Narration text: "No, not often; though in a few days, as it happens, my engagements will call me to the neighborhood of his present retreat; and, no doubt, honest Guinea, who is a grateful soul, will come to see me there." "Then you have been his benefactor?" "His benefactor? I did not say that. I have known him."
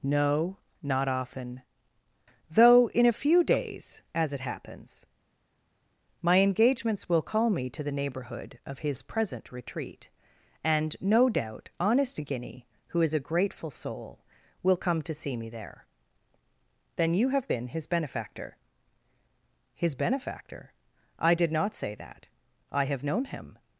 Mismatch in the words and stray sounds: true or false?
false